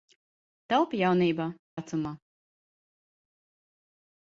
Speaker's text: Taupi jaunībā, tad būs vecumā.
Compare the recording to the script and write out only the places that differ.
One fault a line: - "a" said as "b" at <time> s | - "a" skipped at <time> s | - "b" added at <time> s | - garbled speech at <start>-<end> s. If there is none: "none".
- "tad būs" skipped at 1.5 s